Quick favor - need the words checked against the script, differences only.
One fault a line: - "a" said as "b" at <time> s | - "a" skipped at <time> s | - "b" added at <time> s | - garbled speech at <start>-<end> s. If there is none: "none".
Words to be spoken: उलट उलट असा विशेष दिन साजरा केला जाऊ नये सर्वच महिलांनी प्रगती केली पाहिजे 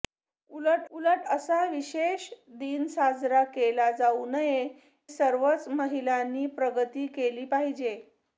none